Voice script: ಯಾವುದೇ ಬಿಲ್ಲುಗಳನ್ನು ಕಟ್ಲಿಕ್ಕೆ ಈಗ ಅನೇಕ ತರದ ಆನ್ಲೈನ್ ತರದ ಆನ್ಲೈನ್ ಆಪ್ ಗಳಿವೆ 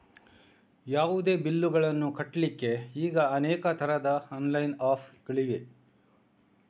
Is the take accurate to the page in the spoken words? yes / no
no